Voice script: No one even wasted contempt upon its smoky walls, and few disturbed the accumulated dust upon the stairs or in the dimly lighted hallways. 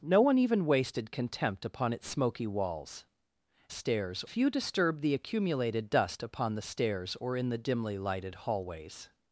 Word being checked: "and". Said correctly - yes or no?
no